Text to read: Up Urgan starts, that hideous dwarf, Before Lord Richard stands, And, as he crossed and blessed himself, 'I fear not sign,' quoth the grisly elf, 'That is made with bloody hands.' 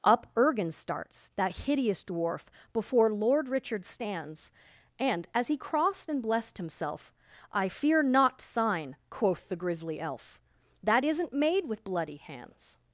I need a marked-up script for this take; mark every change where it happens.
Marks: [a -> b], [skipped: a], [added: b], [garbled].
Up Urgan starts, that hideous dwarf, Before Lord Richard stands, And, as he crossed and blessed himself, 'I fear not sign,' quoth the grisly elf, 'That [is -> isn't] made with bloody hands.'